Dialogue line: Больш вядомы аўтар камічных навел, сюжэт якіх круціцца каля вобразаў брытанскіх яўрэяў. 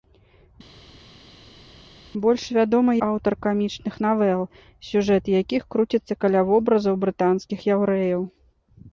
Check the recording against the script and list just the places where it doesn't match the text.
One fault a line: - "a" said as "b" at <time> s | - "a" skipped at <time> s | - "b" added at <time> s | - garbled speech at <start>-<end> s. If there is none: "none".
none